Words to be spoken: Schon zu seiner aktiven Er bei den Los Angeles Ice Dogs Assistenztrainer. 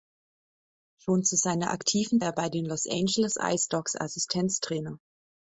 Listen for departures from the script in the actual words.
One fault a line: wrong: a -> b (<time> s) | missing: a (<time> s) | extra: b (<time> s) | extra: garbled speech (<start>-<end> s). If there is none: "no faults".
no faults